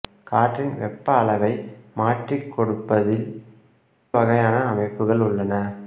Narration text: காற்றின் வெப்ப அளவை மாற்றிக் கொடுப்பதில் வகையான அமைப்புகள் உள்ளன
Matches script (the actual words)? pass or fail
pass